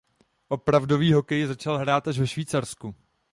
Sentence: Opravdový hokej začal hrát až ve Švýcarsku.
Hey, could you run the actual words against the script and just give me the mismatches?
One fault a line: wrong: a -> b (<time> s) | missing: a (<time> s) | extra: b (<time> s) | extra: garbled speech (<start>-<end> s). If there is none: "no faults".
no faults